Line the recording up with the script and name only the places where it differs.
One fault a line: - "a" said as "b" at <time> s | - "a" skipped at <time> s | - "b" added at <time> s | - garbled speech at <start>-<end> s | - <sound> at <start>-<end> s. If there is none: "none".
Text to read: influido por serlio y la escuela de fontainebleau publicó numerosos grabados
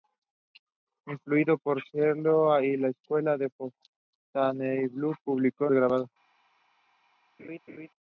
- "numerosos" skipped at 5.7 s
- laugh at 7.4-7.9 s